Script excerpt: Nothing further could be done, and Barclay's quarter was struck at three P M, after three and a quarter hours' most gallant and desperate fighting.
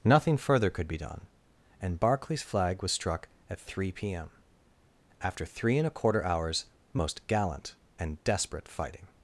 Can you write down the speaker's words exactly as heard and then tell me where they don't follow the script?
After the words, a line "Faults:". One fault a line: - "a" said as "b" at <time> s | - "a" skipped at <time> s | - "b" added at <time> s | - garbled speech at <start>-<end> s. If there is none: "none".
Nothing further could be done, and Barclay's flag was struck at three P M, after three and a quarter hours' most gallant and desperate fighting.
Faults:
- "quarter" said as "flag" at 2.4 s